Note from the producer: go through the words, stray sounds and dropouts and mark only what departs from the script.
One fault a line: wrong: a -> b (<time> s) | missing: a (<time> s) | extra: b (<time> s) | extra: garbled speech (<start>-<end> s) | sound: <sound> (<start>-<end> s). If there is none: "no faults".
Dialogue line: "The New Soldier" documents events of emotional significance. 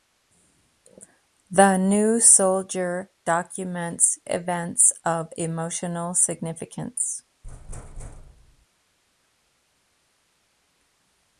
sound: thud (7.4-8.7 s)